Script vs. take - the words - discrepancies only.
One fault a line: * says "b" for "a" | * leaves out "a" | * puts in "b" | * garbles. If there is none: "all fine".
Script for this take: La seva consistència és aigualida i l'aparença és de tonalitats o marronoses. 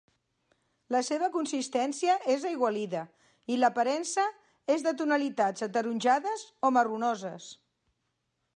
* puts in "ataronjades"